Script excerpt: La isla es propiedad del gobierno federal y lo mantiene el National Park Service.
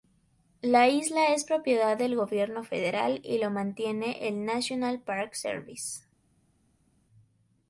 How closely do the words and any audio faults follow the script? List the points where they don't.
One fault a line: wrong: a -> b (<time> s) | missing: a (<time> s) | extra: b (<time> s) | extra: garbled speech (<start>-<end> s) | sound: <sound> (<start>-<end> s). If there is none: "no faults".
no faults